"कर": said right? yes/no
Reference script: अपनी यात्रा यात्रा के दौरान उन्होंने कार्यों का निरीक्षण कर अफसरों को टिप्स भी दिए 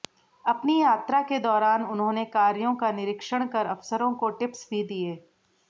yes